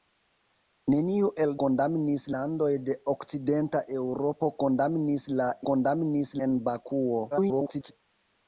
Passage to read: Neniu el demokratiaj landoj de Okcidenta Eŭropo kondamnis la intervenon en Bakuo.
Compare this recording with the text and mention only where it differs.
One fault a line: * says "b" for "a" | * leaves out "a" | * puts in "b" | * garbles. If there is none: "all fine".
* says "kondamnis" for "demokratiaj"
* says "kondamnis" for "intervenon"
* garbles